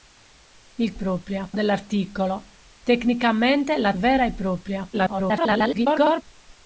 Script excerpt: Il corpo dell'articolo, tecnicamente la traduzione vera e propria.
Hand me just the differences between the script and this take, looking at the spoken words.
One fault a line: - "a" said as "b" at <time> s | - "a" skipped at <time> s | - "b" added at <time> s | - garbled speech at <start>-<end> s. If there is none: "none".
- "corpo" said as "propria" at 0.9 s
- "traduzione" skipped at 3.9 s
- garbled speech at 4.9-6.2 s